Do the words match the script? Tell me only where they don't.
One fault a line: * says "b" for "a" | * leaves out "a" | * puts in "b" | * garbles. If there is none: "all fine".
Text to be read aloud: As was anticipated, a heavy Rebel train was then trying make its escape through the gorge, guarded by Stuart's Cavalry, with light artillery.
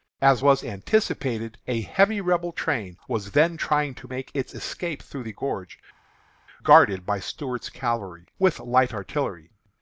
* puts in "to"